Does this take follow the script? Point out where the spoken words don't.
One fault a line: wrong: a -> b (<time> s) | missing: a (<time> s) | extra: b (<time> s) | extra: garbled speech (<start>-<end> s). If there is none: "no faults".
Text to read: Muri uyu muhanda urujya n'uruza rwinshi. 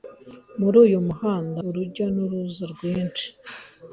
no faults